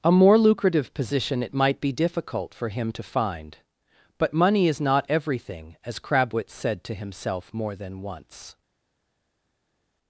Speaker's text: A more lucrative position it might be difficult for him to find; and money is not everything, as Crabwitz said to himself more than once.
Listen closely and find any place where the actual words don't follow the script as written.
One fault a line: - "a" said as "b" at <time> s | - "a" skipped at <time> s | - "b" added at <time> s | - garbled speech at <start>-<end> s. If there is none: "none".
- "and" said as "but" at 4.2 s